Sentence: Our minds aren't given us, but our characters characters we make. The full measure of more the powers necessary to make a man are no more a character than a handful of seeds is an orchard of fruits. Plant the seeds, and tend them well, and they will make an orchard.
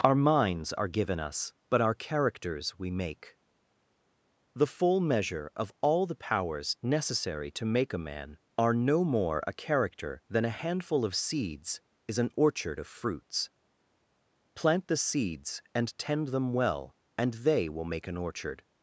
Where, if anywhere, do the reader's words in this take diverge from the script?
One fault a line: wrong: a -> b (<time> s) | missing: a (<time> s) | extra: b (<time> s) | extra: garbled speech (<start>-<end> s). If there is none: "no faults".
wrong: aren't -> are (0.7 s)
missing: characters (2.8 s)
wrong: more -> all (5.8 s)